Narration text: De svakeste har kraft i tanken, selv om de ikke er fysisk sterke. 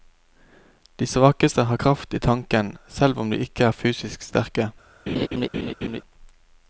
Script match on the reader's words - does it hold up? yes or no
yes